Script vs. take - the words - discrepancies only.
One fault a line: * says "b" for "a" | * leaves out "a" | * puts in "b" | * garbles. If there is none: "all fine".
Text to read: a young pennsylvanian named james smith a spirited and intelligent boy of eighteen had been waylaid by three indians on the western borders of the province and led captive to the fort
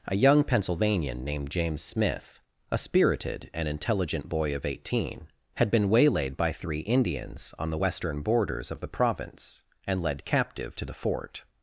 all fine